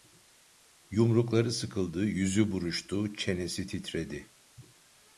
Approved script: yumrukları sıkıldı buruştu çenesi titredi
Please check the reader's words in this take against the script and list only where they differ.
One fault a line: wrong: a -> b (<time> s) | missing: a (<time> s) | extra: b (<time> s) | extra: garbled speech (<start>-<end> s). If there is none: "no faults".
extra: yüzü (2.0 s)